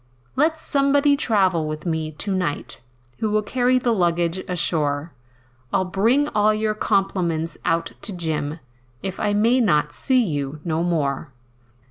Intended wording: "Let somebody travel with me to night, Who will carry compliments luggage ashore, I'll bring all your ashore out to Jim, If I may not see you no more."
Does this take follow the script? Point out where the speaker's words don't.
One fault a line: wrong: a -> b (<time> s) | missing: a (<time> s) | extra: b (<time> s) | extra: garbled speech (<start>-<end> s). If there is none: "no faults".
wrong: compliments -> the (3.8 s)
wrong: ashore -> compliments (6.7 s)